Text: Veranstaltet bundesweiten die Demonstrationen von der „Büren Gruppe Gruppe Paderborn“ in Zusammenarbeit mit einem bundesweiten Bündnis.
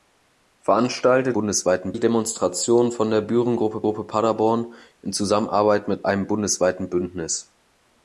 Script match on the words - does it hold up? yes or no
yes